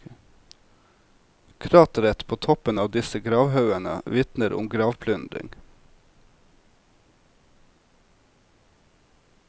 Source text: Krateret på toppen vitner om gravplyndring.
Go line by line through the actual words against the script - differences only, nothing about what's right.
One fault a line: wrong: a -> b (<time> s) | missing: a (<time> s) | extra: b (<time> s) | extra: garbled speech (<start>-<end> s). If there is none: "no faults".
extra: av disse gravhaugene (2.8 s)